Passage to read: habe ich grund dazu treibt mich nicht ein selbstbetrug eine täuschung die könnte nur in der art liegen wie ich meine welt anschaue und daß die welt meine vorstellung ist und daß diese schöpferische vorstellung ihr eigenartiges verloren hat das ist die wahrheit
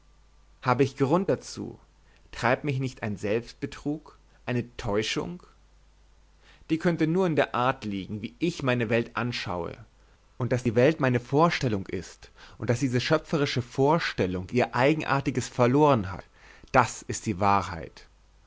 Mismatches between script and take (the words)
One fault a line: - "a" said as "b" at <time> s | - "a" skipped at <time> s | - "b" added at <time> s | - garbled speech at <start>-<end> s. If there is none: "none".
none